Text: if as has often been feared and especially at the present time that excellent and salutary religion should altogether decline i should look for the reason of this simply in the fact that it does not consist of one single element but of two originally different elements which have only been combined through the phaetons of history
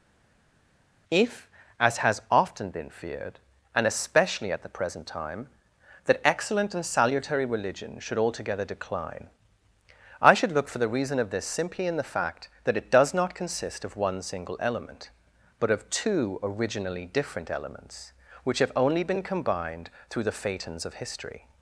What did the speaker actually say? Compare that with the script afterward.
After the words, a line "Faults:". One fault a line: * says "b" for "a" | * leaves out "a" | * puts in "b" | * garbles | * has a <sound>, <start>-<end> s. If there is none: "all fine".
if as has often been feared and especially at the present time that excellent and salutary religion should altogether decline i should look for the reason of this simply in the fact that it does not consist of one single element but of two originally different elements which have only been combined through the phaetons of history
Faults:
all fine